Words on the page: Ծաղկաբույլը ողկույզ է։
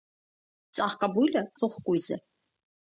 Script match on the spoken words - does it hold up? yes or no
yes